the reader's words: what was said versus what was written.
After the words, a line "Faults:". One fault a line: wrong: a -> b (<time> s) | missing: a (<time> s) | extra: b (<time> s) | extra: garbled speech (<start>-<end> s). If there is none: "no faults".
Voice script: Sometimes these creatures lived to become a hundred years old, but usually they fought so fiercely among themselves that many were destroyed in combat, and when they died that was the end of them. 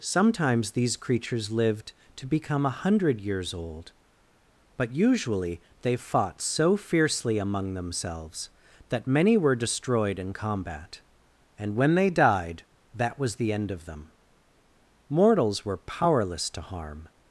Sometimes these creatures lived to become a hundred years old, but usually they fought so fiercely among themselves that many were destroyed in combat, and when they died that was the end of them. Mortals were powerless to harm
Faults:
extra: Mortals were powerless to harm (15.1 s)